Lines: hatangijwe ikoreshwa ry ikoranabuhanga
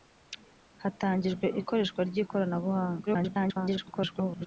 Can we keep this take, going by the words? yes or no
no